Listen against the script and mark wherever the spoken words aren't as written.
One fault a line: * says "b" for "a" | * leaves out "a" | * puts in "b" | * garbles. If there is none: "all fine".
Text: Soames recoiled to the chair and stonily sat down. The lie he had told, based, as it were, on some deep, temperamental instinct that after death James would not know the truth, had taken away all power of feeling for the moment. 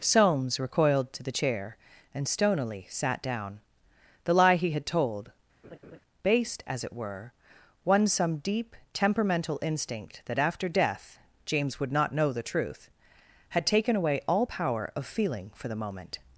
* says "one" for "on"